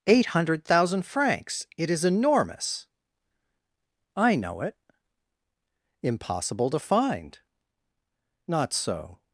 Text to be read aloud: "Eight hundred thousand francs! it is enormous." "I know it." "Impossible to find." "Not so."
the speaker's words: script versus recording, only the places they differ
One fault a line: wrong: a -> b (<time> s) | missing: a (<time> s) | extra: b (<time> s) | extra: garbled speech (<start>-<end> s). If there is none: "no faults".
no faults